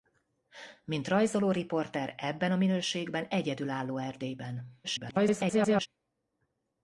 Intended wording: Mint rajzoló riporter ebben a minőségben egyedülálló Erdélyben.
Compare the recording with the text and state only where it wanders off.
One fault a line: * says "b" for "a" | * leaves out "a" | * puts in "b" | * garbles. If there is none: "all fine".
* garbles